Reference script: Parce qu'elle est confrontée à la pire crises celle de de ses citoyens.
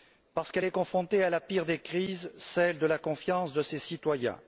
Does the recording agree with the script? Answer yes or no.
no